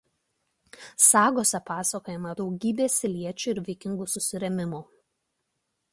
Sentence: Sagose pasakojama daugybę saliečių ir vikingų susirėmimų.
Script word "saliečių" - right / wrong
right